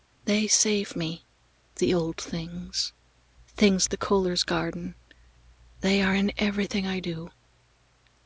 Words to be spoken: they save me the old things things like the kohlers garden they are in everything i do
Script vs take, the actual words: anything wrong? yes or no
yes